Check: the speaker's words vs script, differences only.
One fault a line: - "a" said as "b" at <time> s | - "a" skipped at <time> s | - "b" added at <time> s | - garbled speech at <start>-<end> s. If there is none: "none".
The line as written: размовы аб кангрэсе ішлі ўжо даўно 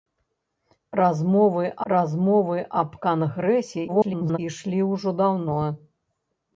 - "размовы" added at 1.9 s
- garbled speech at 3.9-4.4 s